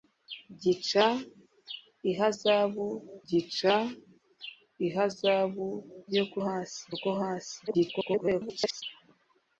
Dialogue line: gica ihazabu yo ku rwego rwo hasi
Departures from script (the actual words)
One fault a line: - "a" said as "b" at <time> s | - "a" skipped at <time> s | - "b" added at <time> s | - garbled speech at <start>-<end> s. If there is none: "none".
- "gica ihazabu" added at 3.3 s
- "rwego" said as "hasi" at 6.5 s
- garbled speech at 7.7-8.8 s